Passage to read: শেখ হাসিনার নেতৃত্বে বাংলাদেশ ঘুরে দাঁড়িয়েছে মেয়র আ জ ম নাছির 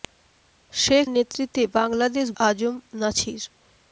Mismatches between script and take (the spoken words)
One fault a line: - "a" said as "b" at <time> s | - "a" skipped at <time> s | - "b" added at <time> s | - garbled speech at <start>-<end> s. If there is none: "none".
- "হাসিনার" skipped at 1.1 s
- "ঘুরে দাঁড়িয়েছে মেয়র" skipped at 2.3 s